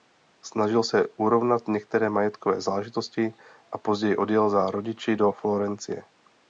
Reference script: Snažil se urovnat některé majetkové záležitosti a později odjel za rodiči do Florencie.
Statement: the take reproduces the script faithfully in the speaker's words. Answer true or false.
true